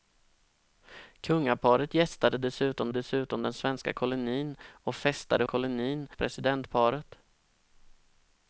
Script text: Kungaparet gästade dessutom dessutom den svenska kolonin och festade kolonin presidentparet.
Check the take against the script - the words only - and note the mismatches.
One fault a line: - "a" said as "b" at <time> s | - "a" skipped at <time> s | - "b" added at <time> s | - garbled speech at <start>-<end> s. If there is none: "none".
none